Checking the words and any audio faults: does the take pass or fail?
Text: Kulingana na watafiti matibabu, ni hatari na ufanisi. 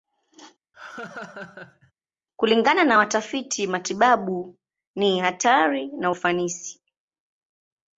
fail